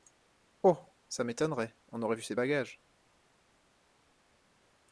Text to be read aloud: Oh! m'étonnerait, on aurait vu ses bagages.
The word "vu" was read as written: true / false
true